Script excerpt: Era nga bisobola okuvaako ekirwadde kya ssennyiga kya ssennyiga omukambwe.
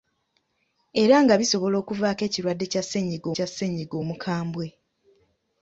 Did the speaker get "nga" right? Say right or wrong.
right